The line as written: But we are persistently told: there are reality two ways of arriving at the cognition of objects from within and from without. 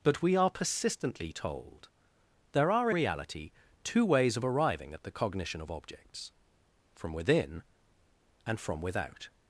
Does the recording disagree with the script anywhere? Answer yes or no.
no